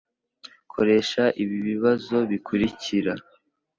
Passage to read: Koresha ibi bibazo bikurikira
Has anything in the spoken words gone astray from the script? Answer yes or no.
no